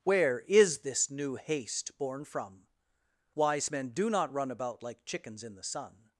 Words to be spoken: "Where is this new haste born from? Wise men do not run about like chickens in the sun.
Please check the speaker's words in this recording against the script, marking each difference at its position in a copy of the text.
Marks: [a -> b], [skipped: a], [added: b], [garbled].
"Where is this new haste born from? Wise men do not run about like chickens in the sun.